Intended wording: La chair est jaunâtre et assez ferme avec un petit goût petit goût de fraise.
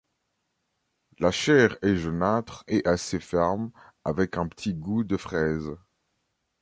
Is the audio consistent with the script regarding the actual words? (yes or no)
no